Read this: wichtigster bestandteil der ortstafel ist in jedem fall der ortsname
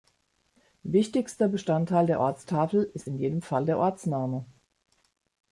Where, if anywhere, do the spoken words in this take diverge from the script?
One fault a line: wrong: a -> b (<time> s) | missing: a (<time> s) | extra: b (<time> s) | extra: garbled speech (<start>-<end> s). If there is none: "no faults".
no faults